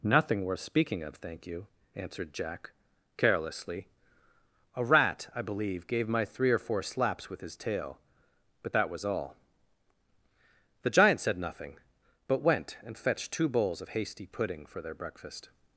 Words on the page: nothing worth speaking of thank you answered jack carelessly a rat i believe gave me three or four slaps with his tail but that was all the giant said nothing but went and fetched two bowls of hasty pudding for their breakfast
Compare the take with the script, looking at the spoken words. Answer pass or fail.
fail